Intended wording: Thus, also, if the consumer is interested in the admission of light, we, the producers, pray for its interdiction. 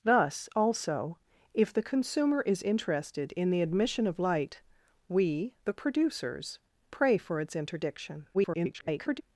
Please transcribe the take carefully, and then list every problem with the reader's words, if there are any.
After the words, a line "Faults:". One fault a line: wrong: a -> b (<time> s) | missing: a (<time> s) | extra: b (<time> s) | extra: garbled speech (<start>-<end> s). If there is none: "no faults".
Thus, also, if the consumer is interested in the admission of light, we, the producers, pray for its interdiction. [garbled]
Faults:
extra: garbled speech (8.3-9.2 s)